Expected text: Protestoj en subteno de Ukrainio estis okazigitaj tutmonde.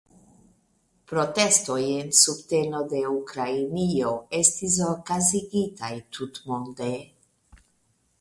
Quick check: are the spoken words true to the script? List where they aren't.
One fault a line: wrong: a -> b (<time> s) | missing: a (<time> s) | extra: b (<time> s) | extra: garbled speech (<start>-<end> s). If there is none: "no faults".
no faults